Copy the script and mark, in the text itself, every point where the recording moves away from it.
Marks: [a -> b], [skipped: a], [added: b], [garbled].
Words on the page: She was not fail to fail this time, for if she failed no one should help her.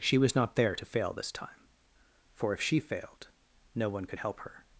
She was not [fail -> there] to fail this time, for if she failed no one [should -> could] help her.